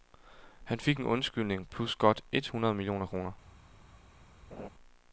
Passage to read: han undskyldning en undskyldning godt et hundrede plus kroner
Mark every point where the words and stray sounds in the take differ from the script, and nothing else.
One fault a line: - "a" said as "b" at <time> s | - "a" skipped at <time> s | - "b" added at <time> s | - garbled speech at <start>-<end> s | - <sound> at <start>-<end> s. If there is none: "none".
- "undskyldning" said as "fik" at 0.8 s
- "plus" added at 1.7 s
- "plus" said as "millioner" at 2.7 s
- laugh at 4.5-4.7 s